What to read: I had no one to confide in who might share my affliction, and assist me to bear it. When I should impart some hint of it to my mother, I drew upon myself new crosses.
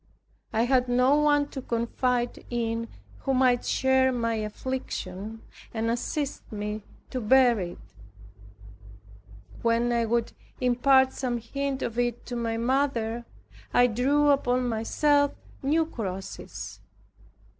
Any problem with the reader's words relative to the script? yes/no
yes